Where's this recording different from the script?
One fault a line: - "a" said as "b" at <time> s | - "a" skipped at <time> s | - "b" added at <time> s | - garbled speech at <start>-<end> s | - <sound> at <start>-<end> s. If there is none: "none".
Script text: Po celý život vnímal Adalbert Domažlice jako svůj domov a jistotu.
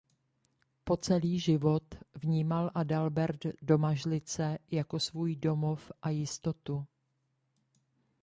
none